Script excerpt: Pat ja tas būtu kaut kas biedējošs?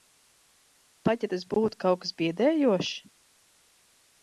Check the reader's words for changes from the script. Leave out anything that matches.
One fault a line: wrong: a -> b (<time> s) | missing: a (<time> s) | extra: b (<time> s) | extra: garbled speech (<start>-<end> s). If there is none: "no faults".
no faults